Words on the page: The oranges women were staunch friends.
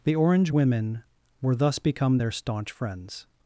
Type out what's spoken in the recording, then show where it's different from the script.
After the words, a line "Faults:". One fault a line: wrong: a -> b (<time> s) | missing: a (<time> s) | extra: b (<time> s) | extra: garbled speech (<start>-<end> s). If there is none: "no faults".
The orange women were thus become their staunch friends.
Faults:
wrong: oranges -> orange (0.1 s)
extra: thus become their (1.6 s)